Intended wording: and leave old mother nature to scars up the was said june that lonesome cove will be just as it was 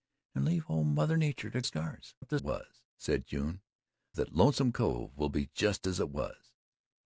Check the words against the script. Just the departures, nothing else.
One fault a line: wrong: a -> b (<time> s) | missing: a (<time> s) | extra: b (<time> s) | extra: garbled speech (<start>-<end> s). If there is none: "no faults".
no faults